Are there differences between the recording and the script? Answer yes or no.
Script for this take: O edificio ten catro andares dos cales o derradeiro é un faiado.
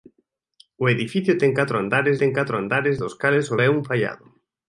yes